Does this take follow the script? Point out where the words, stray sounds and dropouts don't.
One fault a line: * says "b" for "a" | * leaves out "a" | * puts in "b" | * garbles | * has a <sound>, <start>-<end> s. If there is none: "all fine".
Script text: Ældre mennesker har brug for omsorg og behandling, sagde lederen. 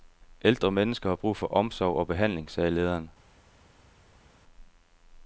all fine